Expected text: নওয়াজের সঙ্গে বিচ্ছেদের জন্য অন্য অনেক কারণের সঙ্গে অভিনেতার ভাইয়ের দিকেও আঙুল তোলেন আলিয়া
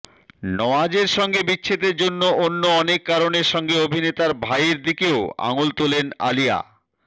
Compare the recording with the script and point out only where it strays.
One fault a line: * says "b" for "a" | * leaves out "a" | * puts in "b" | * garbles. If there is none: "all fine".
all fine